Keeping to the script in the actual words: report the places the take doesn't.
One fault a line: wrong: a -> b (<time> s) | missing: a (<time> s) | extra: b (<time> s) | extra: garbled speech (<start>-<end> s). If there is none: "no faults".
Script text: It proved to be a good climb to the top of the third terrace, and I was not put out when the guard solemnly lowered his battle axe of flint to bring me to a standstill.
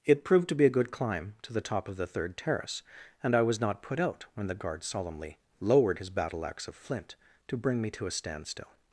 no faults